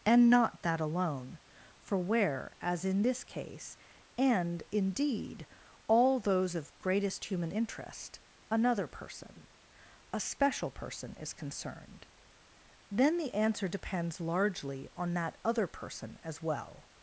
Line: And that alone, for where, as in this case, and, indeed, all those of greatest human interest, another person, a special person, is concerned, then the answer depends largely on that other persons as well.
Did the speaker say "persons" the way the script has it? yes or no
no